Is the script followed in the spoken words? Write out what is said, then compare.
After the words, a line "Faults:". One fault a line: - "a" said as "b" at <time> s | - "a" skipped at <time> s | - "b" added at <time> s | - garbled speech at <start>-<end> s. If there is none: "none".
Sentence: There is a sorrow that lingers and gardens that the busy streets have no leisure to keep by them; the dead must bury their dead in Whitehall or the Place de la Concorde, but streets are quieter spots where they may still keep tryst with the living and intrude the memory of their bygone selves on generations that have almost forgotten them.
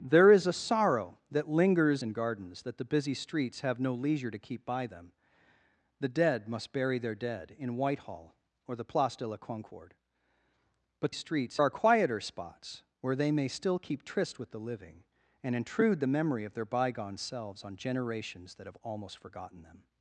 There is a sorrow that lingers and gardens that the busy streets have no leisure to keep by them; the dead must bury their dead in Whitehall or the Place de la Concorde, but streets are quieter spots where they may still keep tryst with the living and intrude the memory of their bygone selves on generations that have almost forgotten them.
Faults:
none